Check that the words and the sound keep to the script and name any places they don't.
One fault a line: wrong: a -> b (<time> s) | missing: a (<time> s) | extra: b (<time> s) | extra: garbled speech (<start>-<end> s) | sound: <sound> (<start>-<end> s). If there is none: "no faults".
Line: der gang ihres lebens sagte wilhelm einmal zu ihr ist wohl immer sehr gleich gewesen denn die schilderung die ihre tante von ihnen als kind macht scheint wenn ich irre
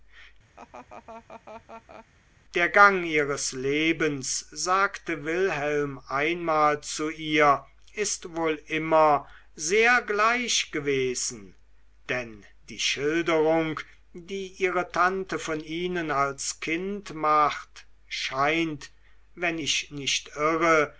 sound: laugh (0.6-2.1 s)
extra: nicht (19.9 s)